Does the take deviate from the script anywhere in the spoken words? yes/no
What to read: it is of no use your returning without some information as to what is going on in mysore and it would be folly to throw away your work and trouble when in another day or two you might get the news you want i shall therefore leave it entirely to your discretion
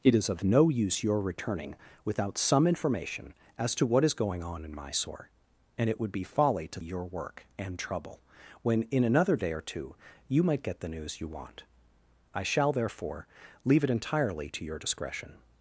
yes